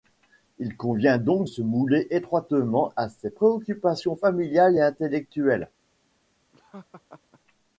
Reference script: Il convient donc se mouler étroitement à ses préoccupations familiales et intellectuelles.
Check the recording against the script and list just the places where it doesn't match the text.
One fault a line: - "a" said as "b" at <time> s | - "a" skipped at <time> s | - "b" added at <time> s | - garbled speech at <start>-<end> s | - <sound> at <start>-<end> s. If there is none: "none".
- laugh at 6.5-7.4 s